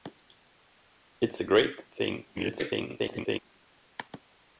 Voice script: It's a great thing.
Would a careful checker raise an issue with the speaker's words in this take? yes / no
yes